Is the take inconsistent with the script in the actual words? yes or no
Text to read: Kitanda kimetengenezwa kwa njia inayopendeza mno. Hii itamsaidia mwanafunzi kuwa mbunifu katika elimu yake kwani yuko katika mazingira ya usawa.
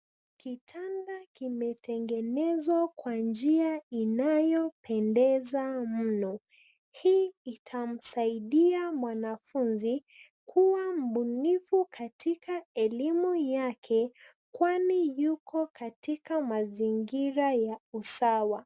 no